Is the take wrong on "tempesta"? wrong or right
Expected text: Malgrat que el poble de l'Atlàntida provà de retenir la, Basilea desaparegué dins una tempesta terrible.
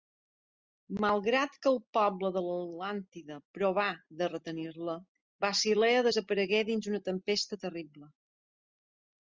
right